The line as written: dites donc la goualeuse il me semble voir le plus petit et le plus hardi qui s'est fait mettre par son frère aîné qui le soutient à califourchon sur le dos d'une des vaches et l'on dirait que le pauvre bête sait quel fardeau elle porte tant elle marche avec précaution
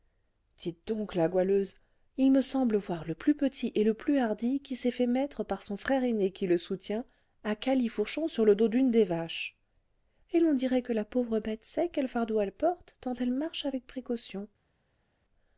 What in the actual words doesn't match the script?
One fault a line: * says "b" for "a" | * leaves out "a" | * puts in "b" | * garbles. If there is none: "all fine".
* says "la" for "le"